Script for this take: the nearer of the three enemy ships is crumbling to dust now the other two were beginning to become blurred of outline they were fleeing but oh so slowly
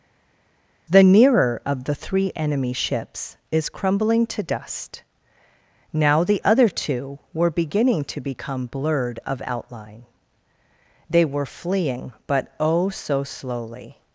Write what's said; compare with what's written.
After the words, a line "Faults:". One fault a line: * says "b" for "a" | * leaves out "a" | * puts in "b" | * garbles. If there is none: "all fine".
the nearer of the three enemy ships is crumbling to dust now the other two were beginning to become blurred of outline they were fleeing but oh so slowly
Faults:
all fine